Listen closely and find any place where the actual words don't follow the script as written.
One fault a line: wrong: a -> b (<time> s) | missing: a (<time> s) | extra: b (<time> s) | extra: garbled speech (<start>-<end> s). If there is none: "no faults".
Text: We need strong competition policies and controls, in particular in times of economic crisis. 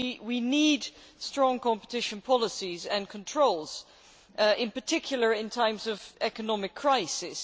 no faults